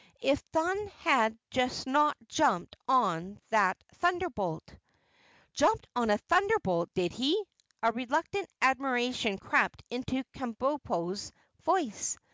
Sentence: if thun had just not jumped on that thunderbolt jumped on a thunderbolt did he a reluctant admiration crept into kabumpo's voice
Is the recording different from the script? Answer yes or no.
no